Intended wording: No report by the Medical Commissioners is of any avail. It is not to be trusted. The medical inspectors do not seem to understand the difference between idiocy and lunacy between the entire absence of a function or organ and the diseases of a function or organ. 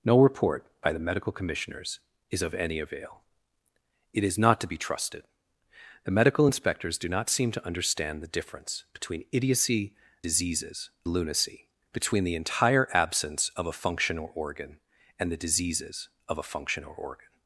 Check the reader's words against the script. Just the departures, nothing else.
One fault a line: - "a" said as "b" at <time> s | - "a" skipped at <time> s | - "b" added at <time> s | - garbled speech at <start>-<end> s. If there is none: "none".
- "and" said as "diseases" at 10.2 s